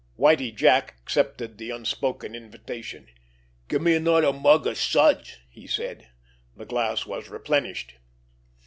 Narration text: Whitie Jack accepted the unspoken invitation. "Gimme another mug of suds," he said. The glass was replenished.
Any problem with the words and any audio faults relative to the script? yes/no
no